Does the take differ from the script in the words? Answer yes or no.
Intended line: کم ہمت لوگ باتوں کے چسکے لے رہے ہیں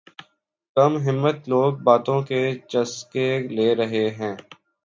no